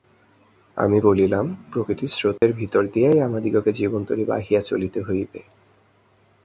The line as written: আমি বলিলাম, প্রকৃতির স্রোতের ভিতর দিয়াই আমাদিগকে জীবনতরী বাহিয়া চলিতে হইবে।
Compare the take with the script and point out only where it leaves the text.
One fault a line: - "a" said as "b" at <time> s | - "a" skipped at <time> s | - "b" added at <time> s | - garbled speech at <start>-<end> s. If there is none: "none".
none